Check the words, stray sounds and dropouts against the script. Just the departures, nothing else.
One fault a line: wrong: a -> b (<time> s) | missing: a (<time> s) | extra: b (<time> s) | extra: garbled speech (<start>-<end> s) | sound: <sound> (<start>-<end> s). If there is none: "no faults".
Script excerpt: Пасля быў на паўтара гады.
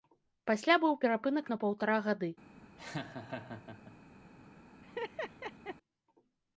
extra: перапынак (1.0 s)
sound: laugh (2.8-4.0 s)
sound: laugh (4.8-5.8 s)